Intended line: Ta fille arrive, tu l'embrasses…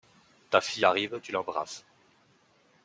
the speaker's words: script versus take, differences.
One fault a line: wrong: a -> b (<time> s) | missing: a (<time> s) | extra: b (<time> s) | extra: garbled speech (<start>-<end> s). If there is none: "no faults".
no faults